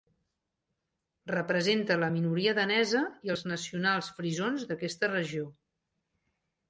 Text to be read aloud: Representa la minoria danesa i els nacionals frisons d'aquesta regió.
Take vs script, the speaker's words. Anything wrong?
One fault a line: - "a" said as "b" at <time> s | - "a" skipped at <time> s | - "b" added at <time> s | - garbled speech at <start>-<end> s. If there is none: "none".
none